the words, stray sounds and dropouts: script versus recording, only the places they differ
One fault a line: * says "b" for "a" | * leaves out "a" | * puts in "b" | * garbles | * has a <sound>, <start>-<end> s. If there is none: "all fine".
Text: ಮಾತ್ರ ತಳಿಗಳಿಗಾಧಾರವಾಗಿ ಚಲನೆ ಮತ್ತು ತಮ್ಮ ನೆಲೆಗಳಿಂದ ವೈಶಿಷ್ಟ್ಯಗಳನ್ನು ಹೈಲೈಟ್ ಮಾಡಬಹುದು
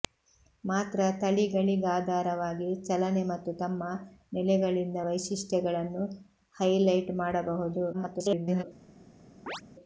* garbles
* has a chirp, 9.5-9.6 s